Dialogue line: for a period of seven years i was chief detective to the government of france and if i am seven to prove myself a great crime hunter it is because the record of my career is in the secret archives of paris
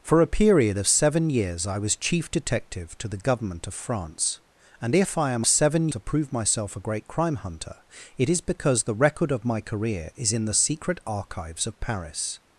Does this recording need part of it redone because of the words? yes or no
no